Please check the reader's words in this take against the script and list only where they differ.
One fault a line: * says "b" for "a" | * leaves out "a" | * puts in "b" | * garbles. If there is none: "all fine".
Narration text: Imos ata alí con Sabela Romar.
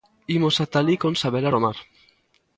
all fine